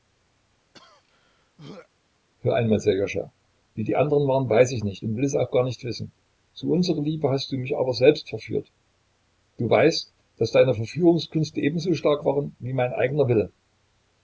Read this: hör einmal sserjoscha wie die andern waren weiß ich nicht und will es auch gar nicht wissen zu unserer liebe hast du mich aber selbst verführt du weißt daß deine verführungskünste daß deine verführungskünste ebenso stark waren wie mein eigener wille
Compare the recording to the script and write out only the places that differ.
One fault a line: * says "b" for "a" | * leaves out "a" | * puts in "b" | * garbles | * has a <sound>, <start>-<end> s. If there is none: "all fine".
* has a throat clearing, 0.7-1.9 s
* leaves out "daß deine verführungskünste"